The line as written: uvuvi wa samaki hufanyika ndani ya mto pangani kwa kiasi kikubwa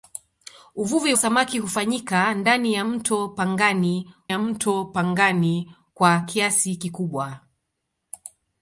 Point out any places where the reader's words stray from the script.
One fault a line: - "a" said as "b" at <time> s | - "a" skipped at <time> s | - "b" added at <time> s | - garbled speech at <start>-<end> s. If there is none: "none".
- "wa" skipped at 1.1 s
- "ya mto pangani" added at 4.3 s